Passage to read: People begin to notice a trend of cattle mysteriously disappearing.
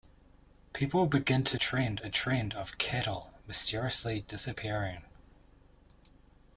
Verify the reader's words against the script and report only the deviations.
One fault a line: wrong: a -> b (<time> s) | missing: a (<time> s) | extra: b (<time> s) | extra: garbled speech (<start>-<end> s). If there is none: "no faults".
wrong: notice -> trend (1.5 s)